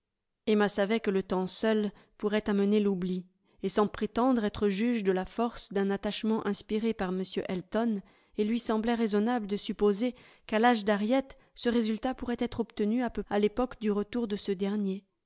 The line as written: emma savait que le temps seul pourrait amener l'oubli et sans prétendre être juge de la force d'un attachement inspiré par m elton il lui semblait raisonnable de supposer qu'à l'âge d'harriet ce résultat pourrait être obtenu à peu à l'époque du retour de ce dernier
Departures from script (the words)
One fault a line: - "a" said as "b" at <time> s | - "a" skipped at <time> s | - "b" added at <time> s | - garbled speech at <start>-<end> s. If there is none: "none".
none